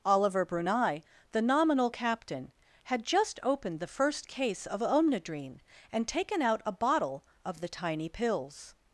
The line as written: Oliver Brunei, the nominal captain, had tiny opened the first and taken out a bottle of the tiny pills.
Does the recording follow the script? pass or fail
fail